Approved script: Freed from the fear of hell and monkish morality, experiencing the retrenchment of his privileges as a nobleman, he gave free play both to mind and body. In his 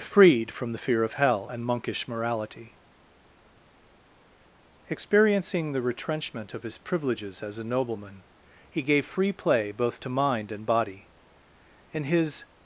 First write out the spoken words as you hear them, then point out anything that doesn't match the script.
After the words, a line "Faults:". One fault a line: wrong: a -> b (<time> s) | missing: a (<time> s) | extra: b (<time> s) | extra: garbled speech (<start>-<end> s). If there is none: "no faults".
Freed from the fear of hell and monkish morality, experiencing the retrenchment of his privileges as a nobleman, he gave free play both to mind and body. In his
Faults:
no faults